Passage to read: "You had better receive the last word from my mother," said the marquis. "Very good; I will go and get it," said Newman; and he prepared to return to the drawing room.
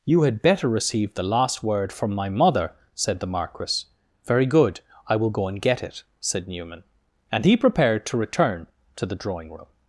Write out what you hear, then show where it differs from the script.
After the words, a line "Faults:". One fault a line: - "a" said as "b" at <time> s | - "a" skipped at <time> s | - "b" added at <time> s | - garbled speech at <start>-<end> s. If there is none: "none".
"You had better receive the last word from my mother," said the marquis. "Very good; I will go and get it," said Newman; and he prepared to return to the drawing room.
Faults:
none